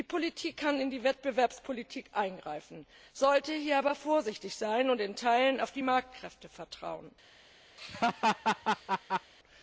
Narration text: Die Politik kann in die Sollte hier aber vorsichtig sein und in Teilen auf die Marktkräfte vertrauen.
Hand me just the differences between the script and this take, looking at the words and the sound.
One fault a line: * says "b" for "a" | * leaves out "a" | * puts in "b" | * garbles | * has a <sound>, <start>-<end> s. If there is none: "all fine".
* puts in "Wettbewerbspolitik eingreifen"
* has a laugh, 7.8-9.3 s